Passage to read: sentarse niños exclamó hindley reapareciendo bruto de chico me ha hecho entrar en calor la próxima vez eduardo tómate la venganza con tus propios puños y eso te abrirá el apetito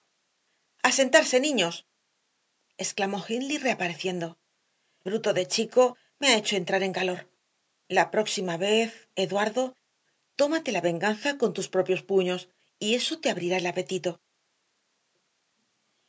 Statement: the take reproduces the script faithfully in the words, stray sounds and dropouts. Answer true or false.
true